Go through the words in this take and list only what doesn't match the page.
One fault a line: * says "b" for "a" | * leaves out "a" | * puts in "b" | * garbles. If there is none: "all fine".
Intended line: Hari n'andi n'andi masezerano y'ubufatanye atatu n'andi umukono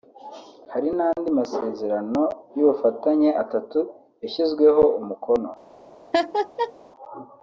* leaves out "n'andi"
* says "yashyizweho" for "n'andi"